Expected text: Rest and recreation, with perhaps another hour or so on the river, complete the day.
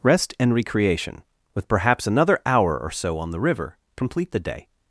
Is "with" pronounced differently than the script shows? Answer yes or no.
no